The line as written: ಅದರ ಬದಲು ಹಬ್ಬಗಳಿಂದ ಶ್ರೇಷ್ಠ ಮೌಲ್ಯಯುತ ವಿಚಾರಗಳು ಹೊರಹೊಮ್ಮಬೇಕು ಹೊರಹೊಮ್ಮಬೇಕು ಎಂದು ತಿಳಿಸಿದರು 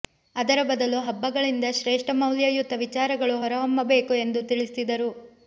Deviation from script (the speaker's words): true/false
true